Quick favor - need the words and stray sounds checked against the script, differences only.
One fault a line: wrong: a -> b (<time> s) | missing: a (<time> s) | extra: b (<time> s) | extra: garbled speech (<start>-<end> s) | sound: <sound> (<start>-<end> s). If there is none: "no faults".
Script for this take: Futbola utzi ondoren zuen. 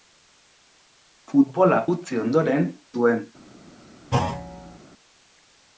sound: thud (4.1-4.8 s)